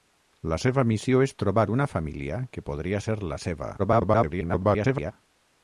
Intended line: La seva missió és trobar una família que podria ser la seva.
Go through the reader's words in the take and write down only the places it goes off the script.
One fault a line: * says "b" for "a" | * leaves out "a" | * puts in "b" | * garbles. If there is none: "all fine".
* garbles